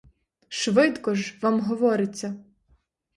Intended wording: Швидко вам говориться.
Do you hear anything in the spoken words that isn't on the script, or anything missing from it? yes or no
yes